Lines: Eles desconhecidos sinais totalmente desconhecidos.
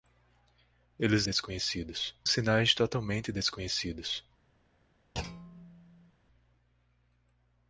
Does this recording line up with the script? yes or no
yes